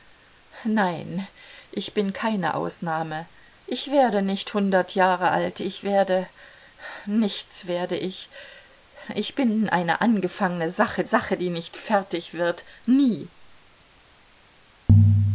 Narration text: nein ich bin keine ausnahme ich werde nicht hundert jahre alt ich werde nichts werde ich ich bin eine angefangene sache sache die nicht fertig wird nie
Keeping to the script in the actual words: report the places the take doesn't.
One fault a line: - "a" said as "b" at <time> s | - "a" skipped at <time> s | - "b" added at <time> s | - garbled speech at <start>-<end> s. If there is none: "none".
none